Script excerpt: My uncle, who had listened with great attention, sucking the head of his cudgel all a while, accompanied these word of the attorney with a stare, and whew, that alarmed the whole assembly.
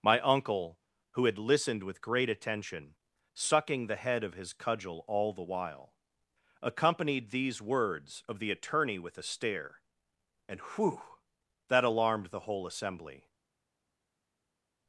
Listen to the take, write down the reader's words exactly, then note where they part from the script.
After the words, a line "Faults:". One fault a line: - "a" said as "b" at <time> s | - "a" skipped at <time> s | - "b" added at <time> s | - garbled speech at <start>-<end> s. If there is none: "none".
My uncle, who had listened with great attention, sucking the head of his cudgel all the while, accompanied these words of the attorney with a stare, and whew, that alarmed the whole assembly.
Faults:
- "a" said as "the" at 5.3 s
- "word" said as "words" at 7.6 s